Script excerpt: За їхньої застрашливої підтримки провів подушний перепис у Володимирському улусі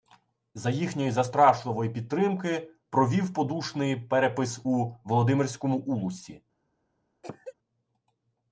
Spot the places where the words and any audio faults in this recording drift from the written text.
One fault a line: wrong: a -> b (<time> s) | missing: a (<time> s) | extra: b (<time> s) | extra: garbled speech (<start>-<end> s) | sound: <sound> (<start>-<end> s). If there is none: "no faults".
sound: cough (7.2-7.5 s)